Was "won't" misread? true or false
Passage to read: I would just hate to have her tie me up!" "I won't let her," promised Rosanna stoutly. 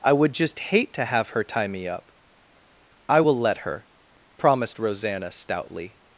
true